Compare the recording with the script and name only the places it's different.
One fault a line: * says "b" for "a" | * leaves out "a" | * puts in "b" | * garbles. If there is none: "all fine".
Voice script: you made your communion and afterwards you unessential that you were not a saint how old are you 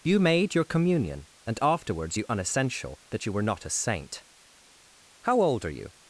all fine